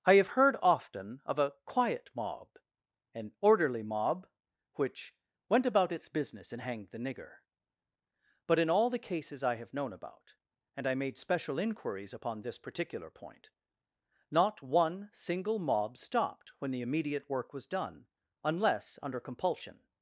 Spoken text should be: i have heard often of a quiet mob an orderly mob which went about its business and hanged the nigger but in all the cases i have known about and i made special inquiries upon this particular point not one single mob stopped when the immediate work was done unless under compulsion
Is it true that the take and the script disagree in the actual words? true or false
false